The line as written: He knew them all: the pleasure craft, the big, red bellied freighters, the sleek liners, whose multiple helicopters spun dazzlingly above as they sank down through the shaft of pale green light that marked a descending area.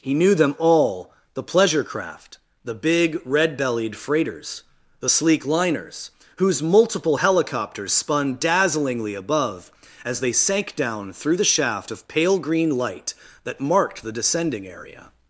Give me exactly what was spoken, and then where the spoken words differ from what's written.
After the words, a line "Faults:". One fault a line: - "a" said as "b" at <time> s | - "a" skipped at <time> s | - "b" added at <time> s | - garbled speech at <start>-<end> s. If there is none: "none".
He knew them all: the pleasure craft, the big, red bellied freighters, the sleek liners, whose multiple helicopters spun dazzlingly above as they sank down through the shaft of pale green light that marked the descending area.
Faults:
- "a" said as "the" at 14.0 s